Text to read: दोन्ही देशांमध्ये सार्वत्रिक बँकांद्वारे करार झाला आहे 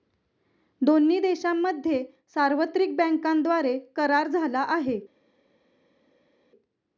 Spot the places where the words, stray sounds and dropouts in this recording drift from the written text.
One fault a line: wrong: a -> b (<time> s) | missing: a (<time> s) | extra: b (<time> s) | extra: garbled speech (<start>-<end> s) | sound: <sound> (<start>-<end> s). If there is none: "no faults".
no faults